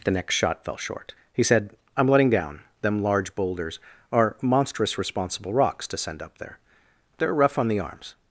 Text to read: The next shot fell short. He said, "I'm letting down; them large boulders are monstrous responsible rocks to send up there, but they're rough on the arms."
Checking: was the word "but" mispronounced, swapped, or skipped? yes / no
yes